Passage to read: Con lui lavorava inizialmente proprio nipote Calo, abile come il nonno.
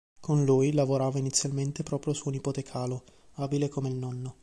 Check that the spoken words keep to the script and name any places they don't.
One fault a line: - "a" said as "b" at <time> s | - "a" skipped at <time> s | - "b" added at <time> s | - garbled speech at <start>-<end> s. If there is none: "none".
- "suo" added at 2.1 s